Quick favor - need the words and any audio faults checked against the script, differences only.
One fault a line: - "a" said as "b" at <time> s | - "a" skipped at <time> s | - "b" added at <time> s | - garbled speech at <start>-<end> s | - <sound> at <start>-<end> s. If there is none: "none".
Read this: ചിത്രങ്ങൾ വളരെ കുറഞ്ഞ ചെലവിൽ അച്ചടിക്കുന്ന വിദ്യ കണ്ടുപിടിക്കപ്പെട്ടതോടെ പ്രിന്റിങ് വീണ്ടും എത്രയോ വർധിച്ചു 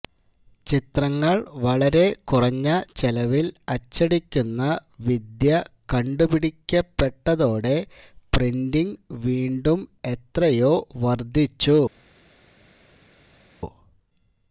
none